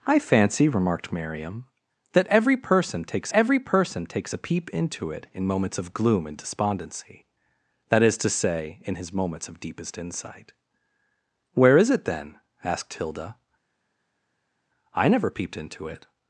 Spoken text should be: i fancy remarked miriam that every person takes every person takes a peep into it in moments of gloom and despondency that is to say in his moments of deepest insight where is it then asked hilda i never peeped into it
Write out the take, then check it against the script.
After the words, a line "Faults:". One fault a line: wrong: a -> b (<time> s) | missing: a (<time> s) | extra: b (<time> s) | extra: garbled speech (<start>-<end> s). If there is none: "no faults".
i fancy remarked miriam that every person takes every person takes a peep into it in moments of gloom and despondency that is to say in his moments of deepest insight where is it then asked hilda i never peeped into it
Faults:
no faults